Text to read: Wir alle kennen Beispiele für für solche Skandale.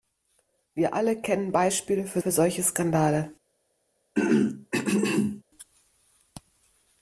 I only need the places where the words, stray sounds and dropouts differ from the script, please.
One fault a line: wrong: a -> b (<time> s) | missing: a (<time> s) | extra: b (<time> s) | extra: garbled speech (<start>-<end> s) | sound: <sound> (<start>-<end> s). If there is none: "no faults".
sound: throat clearing (4.1-5.4 s)